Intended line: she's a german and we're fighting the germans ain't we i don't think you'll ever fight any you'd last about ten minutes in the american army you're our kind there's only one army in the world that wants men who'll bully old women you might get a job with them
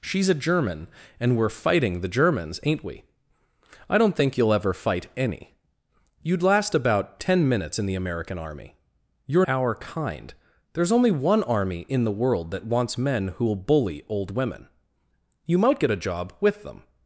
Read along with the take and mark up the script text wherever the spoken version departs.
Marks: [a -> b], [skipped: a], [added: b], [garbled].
she's a german and we're fighting the germans ain't we i don't think you'll ever fight any you'd last about ten minutes in the american army you're our kind there's only one army in the world that wants men who'll bully old women you might get a job with them